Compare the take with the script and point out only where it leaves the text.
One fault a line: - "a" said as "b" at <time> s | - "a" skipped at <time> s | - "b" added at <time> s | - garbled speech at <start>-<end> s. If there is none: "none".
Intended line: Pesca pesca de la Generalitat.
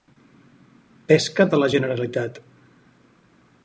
- "pesca" skipped at 1.5 s